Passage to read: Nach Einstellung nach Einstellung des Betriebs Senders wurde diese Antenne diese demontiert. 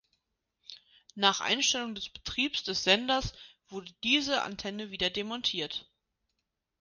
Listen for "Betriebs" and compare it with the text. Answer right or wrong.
wrong